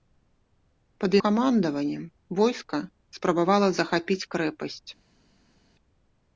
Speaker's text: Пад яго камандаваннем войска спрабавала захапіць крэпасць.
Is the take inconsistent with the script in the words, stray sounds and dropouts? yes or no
yes